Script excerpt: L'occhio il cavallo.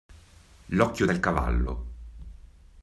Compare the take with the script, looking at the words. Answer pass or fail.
pass